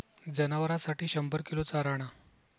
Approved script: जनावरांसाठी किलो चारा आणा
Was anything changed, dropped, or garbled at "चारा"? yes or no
no